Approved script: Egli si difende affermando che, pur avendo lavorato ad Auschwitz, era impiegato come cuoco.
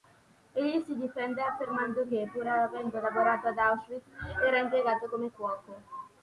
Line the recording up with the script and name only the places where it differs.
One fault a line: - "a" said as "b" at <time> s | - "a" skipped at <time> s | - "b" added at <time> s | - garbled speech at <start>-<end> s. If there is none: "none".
none